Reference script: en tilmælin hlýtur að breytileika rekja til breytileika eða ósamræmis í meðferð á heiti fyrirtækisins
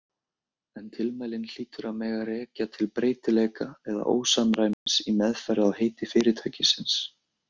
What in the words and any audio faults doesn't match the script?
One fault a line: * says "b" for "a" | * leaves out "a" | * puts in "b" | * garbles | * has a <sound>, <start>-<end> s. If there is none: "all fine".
* says "mega" for "breytileika"
* has a dropout, 4.7-4.9 s